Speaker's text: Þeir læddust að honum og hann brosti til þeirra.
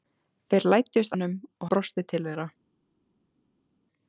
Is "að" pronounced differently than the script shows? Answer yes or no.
yes